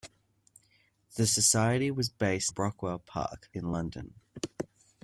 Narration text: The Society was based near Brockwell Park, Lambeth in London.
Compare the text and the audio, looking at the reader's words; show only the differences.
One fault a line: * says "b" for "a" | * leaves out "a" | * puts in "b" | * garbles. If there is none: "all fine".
* leaves out "near"
* leaves out "Lambeth"